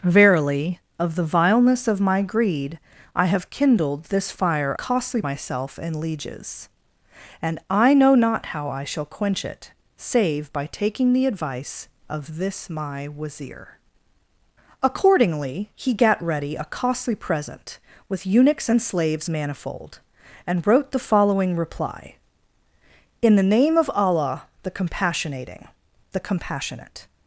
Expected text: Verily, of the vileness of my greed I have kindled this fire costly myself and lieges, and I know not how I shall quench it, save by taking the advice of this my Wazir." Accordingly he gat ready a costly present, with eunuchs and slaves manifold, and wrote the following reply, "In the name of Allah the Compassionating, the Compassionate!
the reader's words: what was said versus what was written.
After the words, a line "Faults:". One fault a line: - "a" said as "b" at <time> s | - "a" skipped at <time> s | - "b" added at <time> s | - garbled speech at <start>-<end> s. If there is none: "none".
Verily, of the vileness of my greed I have kindled this fire costly myself and lieges, and I know not how I shall quench it, save by taking the advice of this my Wazir." Accordingly he gat ready a costly present, with eunuchs and slaves manifold, and wrote the following reply, "In the name of Allah the Compassionating, the Compassionate!
Faults:
none